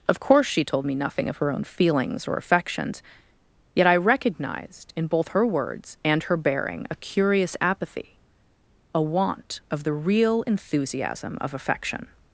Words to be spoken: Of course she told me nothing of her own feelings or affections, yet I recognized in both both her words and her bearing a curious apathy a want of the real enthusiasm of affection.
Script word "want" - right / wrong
right